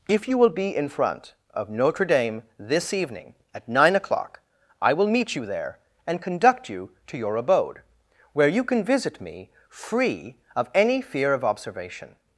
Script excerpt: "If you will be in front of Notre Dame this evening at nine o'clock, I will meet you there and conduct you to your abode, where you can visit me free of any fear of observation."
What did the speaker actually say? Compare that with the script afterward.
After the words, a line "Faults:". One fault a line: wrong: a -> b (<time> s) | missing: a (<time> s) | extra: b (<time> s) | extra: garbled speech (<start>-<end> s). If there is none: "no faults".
"If you will be in front of Notre Dame this evening at nine o'clock, I will meet you there and conduct you to your abode, where you can visit me free of any fear of observation."
Faults:
no faults